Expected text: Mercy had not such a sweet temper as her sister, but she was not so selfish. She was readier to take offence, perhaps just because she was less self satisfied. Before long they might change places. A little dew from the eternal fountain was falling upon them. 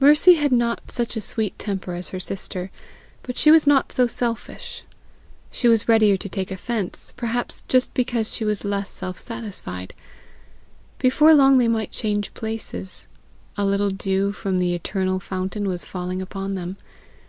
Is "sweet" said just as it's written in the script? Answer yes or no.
yes